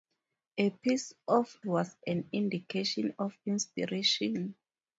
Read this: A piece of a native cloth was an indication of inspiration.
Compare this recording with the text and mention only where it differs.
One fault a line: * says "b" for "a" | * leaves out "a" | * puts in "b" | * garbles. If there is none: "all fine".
* leaves out "a native cloth"